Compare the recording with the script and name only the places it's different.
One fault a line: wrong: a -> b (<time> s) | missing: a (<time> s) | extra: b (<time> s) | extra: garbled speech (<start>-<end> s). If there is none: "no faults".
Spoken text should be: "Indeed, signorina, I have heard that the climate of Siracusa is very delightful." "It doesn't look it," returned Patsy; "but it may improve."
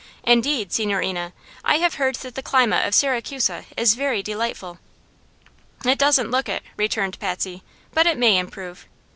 no faults